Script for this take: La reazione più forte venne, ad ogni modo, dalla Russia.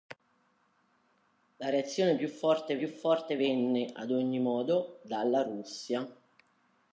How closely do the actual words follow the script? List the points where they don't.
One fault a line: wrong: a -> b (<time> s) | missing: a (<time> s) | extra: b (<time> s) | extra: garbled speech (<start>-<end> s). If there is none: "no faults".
extra: più forte (2.7 s)